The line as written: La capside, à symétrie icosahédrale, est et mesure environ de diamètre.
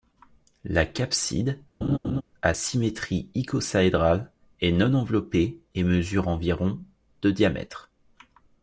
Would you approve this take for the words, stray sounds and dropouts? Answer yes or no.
no